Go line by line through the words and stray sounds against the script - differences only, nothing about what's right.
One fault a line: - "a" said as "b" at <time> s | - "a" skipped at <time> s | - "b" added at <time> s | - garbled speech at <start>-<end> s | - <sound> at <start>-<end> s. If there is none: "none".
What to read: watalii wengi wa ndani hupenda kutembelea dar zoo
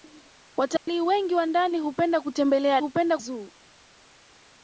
- dropout at 0.8-0.9 s
- "dar" said as "hupenda" at 2.8 s